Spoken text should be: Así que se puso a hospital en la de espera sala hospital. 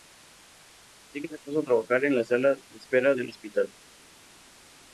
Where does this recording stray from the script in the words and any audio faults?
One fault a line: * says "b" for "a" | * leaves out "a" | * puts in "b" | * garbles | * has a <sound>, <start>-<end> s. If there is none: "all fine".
* says "trabajar" for "hospital"
* puts in "sala"
* says "del" for "sala"